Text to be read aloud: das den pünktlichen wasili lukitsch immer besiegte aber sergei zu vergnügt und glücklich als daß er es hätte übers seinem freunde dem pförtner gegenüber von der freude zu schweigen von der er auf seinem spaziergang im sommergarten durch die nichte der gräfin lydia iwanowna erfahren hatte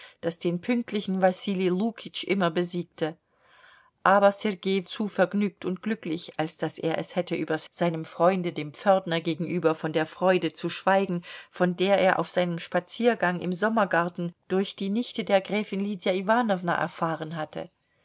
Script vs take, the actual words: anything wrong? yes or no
no